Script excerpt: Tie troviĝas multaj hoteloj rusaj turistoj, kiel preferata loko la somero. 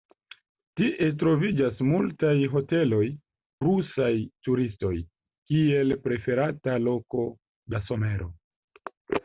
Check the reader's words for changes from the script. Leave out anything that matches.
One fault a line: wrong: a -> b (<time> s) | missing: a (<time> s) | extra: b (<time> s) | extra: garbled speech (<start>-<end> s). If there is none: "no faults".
no faults